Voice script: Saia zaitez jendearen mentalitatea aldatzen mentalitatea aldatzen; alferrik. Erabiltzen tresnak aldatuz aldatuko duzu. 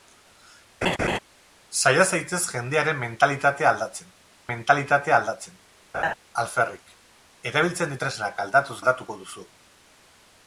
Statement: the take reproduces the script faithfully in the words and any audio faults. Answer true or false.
false